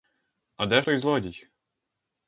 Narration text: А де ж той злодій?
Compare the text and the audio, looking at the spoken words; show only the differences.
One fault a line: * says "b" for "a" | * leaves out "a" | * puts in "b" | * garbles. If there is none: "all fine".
* leaves out "ж"